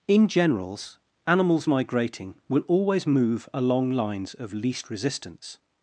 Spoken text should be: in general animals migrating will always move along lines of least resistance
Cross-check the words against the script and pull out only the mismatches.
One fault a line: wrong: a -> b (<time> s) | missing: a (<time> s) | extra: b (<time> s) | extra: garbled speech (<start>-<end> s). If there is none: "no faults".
wrong: general -> generals (0.3 s)